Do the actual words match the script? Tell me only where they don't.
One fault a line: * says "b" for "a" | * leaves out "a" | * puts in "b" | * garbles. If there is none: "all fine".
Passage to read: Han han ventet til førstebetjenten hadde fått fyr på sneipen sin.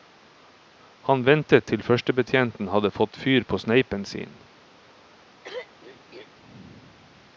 * leaves out "han"